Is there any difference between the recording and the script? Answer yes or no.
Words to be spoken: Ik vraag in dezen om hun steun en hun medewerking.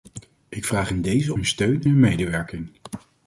yes